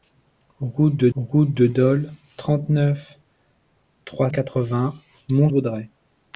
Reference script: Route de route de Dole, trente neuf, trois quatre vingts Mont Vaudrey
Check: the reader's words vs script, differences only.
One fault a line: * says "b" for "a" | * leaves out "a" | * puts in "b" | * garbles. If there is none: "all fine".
all fine